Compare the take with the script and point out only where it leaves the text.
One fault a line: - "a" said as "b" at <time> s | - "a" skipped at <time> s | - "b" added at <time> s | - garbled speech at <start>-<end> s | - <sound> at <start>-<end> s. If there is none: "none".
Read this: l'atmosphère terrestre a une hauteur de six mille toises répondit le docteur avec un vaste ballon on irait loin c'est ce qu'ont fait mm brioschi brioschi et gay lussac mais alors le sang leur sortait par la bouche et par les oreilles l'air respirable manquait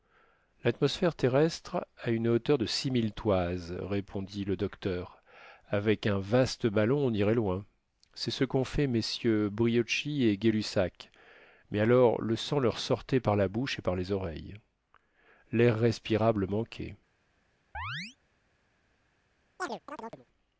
- "brioschi" skipped at 10.2 s
- chirp at 17.7-18.2 s
- chirp at 19.6-20.3 s